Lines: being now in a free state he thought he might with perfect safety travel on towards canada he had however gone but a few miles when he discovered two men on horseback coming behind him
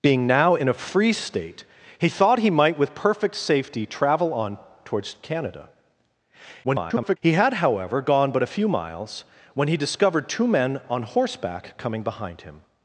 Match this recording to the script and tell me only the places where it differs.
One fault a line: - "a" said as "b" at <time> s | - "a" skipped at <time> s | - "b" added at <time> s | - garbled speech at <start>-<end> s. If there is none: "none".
- garbled speech at 6.6-7.2 s